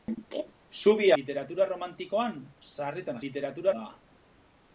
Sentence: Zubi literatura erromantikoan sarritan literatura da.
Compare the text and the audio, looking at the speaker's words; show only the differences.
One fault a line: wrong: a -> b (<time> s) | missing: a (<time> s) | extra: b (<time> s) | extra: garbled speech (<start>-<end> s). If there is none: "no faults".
no faults